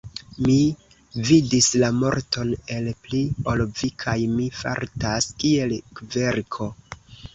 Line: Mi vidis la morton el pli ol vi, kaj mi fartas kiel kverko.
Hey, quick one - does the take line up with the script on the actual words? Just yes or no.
yes